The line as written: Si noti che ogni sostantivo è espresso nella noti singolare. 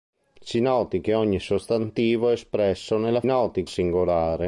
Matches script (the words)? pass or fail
pass